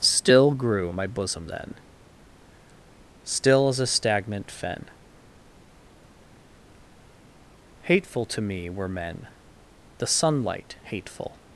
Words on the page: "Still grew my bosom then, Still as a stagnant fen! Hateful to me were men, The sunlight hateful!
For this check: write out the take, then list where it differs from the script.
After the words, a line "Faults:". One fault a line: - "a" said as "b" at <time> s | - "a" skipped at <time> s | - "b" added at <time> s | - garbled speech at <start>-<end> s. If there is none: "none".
"Still grew my bosom then, Still as a stagnant fen! Hateful to me were men, The sunlight hateful!
Faults:
none